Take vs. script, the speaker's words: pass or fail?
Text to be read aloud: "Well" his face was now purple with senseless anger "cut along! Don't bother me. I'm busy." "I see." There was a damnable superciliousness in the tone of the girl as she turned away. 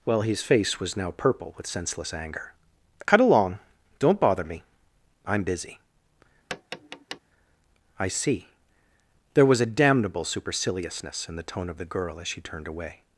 pass